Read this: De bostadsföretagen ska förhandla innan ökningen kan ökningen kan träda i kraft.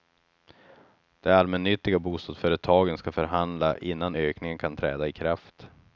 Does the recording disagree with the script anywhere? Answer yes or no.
yes